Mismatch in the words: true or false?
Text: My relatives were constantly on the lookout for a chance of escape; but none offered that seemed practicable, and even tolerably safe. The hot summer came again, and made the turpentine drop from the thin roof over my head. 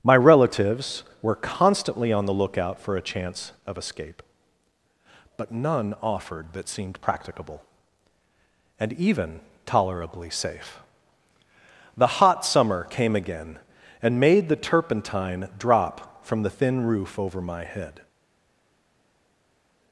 false